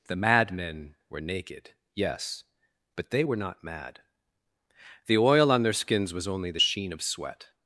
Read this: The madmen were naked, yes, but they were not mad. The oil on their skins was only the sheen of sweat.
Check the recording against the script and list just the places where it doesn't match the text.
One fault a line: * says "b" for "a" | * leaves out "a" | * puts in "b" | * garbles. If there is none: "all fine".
all fine